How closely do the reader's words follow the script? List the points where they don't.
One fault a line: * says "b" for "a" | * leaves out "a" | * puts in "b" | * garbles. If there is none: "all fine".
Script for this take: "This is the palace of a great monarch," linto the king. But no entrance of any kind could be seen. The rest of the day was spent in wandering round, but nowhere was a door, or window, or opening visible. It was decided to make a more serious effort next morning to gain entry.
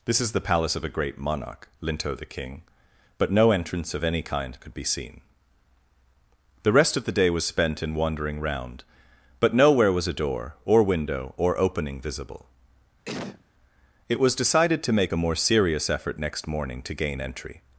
all fine